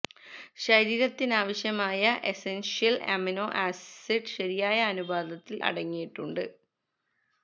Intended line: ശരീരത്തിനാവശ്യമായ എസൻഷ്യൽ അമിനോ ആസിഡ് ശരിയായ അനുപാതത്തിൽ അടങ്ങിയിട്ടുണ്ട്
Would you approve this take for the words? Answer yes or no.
yes